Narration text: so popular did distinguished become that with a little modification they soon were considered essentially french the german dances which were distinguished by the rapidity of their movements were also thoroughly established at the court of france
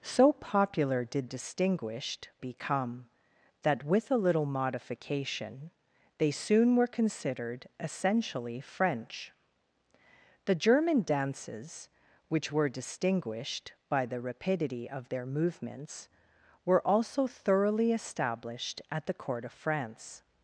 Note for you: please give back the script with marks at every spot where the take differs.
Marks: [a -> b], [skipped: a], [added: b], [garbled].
so popular did distinguished become that with a little modification they soon were considered essentially french the german dances which were distinguished by the rapidity of their movements were also thoroughly established at the court of france